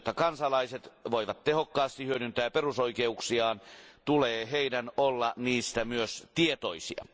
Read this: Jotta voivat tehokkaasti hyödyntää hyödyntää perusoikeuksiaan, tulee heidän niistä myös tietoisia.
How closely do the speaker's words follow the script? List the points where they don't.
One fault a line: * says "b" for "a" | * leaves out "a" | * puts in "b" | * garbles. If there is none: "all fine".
* puts in "kansalaiset"
* leaves out "hyödyntää"
* puts in "olla"